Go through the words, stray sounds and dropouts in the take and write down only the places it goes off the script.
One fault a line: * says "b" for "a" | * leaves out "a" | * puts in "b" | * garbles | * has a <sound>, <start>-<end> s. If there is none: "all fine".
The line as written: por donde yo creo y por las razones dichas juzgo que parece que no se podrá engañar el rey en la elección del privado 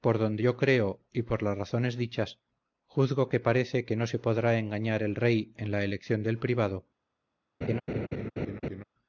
* has a laugh, 7.6-8.8 s